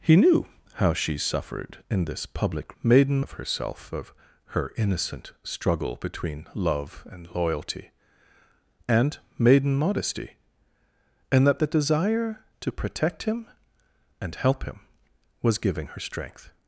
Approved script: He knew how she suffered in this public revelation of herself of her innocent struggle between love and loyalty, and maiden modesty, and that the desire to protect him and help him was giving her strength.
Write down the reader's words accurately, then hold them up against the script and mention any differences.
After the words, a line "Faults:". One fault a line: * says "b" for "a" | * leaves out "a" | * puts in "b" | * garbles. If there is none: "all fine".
He knew how she suffered in this public maiden of herself of her innocent struggle between love and loyalty, and maiden modesty, and that the desire to protect him and help him was giving her strength.
Faults:
* says "maiden" for "revelation"